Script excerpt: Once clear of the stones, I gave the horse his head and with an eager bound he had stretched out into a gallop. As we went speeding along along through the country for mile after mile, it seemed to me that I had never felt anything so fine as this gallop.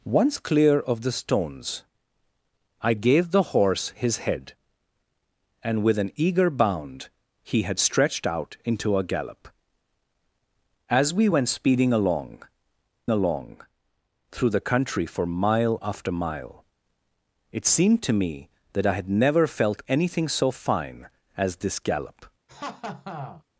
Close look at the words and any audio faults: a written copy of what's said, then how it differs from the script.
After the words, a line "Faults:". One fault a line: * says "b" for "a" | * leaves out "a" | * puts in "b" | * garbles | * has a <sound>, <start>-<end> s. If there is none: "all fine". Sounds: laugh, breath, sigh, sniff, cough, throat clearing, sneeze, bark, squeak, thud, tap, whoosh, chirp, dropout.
Once clear of the stones, I gave the horse his head and with an eager bound he had stretched out into a gallop. As we went speeding along along through the country for mile after mile, it seemed to me that I had never felt anything so fine as this gallop.
Faults:
* has a laugh, 22.5-23.4 s